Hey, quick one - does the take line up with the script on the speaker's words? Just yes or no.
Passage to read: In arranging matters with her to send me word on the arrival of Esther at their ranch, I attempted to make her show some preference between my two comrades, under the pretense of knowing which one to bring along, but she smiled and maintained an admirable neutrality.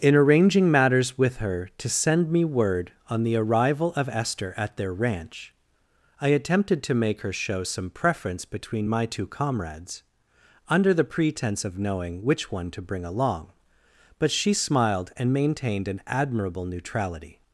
yes